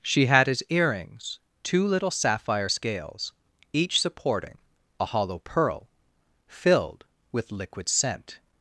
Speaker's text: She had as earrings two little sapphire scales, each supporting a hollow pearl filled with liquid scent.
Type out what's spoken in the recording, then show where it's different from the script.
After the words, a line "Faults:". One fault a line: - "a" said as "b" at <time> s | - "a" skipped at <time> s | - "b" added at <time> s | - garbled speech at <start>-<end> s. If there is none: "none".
She had as earrings two little sapphire scales, each supporting a hollow pearl filled with liquid scent.
Faults:
none